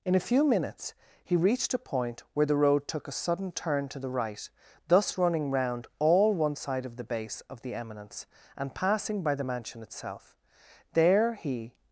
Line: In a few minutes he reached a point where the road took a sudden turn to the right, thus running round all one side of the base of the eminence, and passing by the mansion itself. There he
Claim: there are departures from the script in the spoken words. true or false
false